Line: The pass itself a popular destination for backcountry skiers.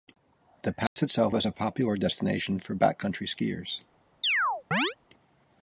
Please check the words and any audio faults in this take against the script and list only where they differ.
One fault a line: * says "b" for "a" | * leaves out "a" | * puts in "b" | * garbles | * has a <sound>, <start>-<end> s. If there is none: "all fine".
* has a dropout, 0.9-1.0 s
* puts in "is"
* has a chirp, 4.2-5.0 s